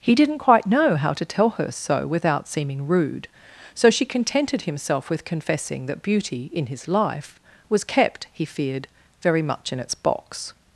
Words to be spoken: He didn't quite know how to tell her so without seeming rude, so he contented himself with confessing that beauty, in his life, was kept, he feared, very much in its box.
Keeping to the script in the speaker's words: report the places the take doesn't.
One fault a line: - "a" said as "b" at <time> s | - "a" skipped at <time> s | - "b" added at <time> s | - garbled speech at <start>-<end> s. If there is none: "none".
- "he" said as "she" at 3.9 s